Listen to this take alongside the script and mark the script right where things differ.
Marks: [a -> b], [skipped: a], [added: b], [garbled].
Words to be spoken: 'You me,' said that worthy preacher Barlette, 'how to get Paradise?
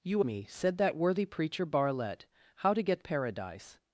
'You me,' said that worthy preacher Barlette, 'how to get Paradise?